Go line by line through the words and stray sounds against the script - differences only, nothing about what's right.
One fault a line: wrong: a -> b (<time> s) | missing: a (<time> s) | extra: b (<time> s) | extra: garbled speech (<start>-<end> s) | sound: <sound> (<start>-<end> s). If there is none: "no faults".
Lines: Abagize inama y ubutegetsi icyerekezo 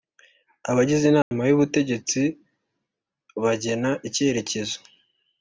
sound: dropout (1.2-1.3 s)
extra: bagena (3.4 s)